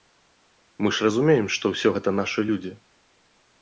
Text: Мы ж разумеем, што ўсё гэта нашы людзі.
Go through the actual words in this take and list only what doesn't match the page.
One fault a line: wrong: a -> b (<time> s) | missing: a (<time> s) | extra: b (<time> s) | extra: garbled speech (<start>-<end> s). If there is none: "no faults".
no faults